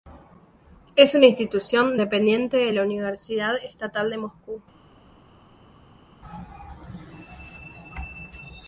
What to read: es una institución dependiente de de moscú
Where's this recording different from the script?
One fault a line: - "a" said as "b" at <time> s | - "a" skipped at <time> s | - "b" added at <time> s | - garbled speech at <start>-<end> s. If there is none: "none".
- "la universidad estatal" added at 2.7 s